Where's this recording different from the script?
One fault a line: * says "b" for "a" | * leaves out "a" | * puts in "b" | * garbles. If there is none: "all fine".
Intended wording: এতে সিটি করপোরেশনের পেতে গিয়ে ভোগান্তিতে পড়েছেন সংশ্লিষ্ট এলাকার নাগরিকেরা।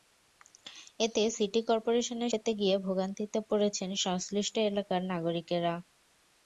all fine